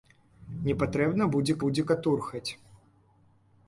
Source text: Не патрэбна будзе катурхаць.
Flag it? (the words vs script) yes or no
yes